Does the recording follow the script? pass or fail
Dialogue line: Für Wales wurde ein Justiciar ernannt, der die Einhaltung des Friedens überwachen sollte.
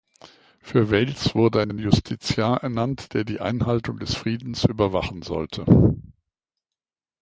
fail